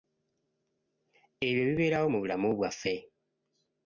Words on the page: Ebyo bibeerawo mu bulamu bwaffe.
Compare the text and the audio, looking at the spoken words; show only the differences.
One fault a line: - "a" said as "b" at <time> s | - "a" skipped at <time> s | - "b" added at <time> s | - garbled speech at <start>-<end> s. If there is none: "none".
none